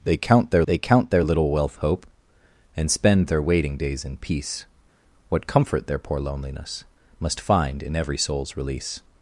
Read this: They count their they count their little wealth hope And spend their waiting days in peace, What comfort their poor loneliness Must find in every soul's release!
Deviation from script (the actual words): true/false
false